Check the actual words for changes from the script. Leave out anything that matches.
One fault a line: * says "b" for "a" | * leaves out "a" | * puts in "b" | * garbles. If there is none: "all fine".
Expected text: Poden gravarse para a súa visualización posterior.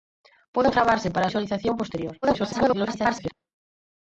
* leaves out "súa"
* garbles